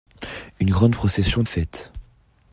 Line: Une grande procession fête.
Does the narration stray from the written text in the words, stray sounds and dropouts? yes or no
no